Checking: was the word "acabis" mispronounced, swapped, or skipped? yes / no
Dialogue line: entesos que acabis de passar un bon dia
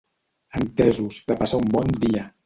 yes